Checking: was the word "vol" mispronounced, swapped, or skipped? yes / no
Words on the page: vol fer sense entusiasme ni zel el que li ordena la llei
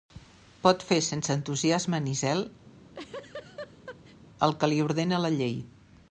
yes